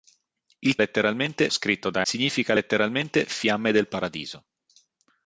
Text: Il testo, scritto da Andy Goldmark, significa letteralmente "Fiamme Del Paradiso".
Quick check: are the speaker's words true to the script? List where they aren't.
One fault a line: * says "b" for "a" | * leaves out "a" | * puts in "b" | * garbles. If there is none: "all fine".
* says "letteralmente" for "testo"
* leaves out "Andy Goldmark"